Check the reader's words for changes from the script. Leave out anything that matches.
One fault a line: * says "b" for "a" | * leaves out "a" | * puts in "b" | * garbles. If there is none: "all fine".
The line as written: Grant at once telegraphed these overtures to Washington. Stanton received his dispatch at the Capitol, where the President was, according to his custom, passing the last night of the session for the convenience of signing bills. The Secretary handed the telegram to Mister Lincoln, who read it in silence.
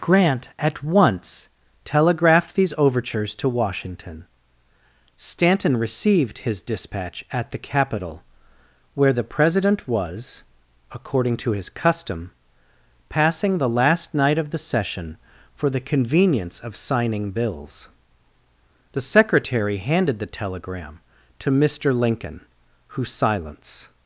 * leaves out "read it in"